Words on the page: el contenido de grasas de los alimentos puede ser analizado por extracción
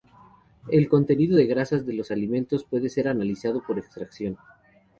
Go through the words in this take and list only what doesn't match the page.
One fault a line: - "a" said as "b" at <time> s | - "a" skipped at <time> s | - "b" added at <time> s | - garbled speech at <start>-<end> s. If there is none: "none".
none